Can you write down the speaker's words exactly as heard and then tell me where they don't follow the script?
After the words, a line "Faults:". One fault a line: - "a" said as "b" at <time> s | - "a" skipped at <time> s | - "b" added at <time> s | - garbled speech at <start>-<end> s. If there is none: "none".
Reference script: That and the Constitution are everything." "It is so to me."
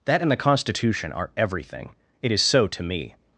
That and the Constitution are everything." "It is so to me."
Faults:
none